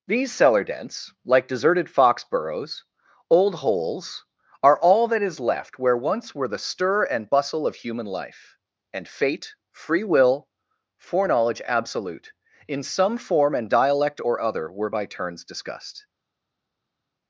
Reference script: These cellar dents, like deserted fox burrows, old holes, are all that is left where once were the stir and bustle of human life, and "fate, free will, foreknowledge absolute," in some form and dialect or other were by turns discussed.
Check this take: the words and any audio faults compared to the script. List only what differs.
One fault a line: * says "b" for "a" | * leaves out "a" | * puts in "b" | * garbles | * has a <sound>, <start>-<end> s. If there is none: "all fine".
all fine